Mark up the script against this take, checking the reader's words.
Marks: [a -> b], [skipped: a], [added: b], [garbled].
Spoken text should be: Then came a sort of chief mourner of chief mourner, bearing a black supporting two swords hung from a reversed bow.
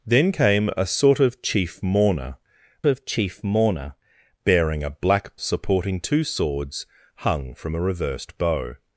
Then came a sort of chief mourner of chief mourner, bearing a black supporting two swords hung from a reversed bow.